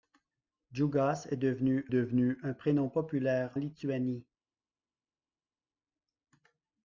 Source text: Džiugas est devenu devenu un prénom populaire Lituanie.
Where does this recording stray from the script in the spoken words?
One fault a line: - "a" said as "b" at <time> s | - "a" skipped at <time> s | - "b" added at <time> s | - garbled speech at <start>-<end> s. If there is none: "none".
none